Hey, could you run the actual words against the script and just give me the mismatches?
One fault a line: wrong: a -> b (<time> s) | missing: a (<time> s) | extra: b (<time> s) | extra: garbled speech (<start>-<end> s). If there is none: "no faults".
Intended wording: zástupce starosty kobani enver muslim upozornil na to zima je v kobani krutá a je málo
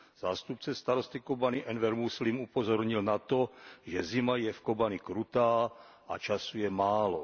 extra: že (3.8 s)
extra: času (6.2 s)